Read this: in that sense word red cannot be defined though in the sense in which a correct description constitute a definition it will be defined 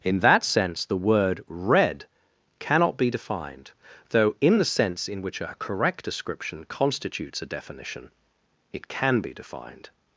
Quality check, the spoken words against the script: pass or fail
fail